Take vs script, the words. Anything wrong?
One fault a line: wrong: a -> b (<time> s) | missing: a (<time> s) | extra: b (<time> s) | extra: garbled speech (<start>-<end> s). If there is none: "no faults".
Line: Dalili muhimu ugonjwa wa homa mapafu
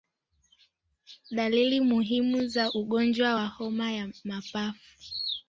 extra: za (2.5 s)
extra: ya (3.9 s)